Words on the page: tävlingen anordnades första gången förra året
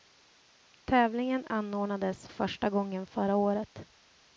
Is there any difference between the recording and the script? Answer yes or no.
no